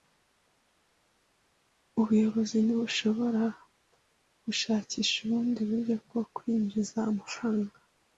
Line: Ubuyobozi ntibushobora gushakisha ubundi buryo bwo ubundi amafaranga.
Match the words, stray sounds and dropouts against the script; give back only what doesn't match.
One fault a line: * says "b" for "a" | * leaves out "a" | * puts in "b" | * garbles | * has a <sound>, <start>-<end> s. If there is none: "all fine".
* says "kwinjiza" for "ubundi"